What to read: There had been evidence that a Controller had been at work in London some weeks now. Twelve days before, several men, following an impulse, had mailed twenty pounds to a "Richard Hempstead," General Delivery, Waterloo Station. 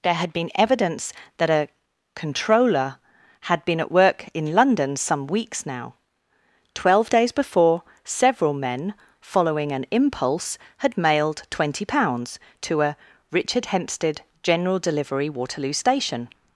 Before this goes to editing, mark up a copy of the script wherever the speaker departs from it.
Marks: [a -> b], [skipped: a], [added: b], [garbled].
There had been evidence that a Controller had been at work in London some weeks now. Twelve days before, several men, following an impulse, had mailed twenty pounds to a "Richard Hempstead," General Delivery, Waterloo Station.